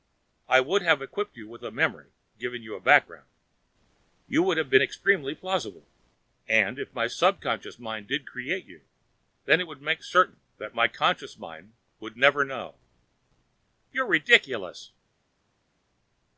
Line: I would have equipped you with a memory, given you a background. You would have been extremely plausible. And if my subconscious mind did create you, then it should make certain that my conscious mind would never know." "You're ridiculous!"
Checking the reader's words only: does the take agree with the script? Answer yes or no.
no